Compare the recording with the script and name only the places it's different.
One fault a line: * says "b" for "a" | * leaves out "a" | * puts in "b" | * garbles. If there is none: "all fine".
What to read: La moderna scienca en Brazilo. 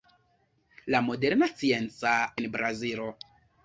all fine